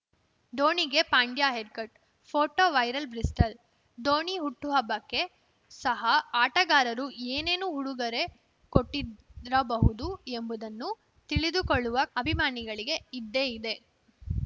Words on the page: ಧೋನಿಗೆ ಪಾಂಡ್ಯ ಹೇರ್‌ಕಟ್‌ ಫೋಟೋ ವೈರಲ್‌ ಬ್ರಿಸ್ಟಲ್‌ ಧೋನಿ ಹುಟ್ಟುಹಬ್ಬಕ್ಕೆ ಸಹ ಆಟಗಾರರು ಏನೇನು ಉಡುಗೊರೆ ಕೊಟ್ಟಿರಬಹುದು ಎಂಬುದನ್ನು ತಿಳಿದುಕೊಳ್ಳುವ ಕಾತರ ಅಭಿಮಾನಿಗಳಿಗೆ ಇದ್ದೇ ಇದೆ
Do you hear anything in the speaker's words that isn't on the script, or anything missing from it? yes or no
yes